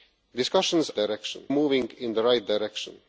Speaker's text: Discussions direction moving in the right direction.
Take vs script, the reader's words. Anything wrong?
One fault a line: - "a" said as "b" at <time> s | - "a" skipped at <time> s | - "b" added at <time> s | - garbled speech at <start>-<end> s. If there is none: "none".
none